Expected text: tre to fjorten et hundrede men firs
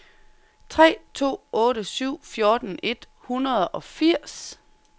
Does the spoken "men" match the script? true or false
false